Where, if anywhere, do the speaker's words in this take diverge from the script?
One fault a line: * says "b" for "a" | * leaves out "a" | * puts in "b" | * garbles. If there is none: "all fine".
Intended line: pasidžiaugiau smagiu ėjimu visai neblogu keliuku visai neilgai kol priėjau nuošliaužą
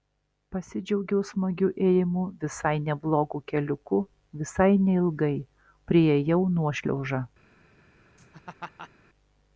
* leaves out "kol"